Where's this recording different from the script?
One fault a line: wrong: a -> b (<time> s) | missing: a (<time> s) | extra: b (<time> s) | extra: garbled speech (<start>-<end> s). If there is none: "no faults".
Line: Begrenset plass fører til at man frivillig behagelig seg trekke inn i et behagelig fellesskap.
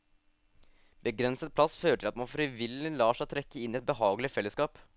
wrong: behagelig -> lar (3.0 s)